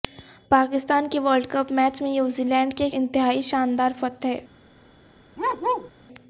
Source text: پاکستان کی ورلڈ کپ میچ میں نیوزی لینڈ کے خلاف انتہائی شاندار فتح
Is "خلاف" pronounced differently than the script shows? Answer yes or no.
yes